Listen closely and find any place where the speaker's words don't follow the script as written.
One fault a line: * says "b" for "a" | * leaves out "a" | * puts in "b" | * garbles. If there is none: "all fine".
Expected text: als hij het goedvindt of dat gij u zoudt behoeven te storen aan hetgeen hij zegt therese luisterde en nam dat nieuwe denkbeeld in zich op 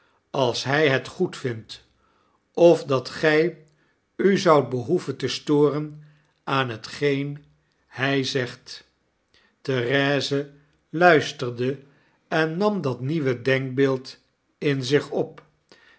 all fine